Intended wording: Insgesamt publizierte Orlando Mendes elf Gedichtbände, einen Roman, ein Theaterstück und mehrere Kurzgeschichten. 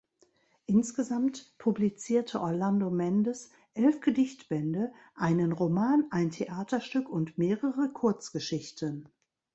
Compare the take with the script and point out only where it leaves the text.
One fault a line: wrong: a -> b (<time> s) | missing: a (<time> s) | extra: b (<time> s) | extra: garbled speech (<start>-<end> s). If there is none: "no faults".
no faults